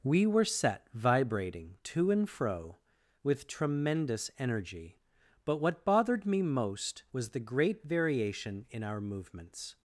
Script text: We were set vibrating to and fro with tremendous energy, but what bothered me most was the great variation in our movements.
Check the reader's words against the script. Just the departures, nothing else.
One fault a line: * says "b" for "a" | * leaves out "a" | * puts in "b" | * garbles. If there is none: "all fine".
all fine